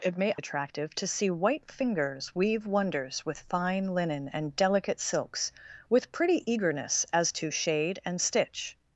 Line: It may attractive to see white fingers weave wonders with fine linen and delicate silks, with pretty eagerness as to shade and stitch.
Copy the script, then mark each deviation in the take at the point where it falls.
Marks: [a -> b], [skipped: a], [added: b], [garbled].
It may attractive to see white fingers weave wonders with fine linen and delicate silks, with pretty eagerness as to shade and stitch.